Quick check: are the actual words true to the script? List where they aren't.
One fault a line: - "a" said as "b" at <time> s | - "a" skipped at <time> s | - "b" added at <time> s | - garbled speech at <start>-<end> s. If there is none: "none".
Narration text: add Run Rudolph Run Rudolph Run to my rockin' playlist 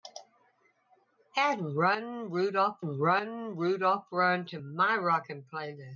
none